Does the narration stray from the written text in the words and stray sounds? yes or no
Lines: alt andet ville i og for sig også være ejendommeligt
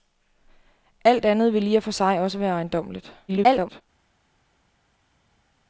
yes